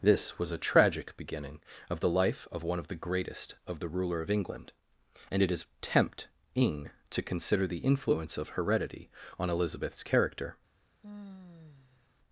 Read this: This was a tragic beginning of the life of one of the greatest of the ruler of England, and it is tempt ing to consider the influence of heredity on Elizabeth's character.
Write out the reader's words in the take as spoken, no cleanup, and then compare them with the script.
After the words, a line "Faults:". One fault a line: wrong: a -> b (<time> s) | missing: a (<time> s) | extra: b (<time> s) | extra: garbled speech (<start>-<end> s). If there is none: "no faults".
This was a tragic beginning of the life of one of the greatest of the ruler of England, and it is tempt ing to consider the influence of heredity on Elizabeth's character.
Faults:
no faults